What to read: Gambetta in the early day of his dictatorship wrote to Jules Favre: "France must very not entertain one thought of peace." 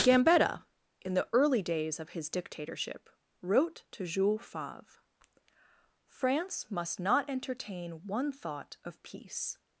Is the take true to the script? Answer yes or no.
no